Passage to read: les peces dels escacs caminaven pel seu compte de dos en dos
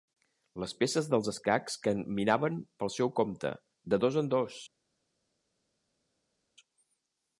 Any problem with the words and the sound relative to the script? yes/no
no